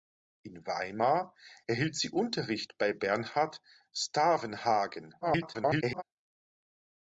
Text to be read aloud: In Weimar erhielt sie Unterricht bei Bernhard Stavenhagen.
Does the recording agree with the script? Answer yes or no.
no